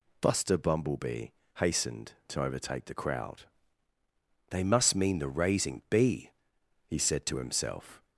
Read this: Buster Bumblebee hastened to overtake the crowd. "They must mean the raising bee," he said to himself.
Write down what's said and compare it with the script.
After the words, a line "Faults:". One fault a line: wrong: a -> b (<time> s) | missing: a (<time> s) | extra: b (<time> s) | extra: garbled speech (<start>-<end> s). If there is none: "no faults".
Buster Bumblebee hastened to overtake the crowd. "They must mean the raising bee," he said to himself.
Faults:
no faults